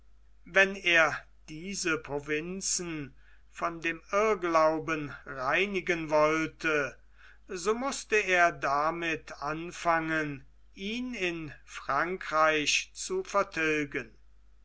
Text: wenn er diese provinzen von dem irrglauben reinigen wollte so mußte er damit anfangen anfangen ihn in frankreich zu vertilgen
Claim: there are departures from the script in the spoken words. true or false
true